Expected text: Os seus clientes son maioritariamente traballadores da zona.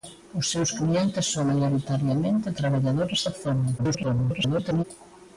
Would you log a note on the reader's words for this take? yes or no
yes